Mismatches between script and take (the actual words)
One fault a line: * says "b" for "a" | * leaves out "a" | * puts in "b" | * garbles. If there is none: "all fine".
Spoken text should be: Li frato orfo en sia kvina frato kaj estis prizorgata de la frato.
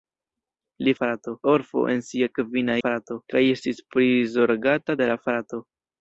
all fine